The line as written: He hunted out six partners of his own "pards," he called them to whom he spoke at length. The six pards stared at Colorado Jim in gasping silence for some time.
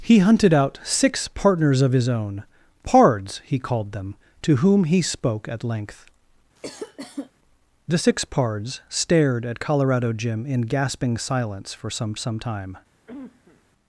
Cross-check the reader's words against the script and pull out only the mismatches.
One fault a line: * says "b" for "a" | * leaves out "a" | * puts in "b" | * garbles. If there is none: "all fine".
* puts in "some"